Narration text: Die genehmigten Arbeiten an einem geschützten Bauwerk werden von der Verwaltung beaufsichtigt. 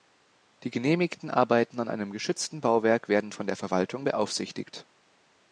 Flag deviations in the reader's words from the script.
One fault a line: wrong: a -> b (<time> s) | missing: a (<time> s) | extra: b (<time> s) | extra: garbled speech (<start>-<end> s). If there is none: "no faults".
no faults